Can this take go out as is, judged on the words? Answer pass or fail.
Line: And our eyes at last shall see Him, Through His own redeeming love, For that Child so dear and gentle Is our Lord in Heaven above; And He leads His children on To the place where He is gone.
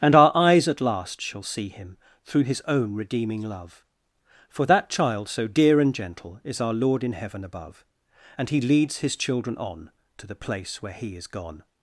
pass